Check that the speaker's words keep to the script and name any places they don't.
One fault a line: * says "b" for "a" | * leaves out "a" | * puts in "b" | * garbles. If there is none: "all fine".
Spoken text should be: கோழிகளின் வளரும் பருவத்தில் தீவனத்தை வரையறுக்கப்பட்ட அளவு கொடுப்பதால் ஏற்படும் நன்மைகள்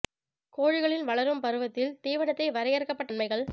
* leaves out "அளவு கொடுப்பதால் ஏற்படும்"